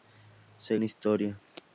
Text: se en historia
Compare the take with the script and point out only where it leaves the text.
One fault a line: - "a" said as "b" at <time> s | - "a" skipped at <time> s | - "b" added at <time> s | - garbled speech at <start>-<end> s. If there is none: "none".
none